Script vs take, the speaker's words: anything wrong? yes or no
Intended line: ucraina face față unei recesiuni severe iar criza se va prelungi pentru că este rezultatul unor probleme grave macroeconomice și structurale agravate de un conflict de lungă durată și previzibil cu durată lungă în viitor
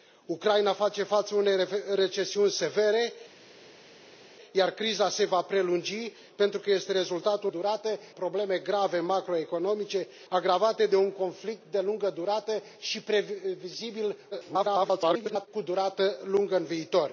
yes